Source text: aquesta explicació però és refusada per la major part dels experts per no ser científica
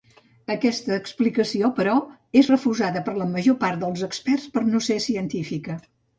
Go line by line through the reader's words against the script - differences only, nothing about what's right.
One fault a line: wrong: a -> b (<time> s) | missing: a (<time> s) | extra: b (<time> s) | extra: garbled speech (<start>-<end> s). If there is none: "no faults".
no faults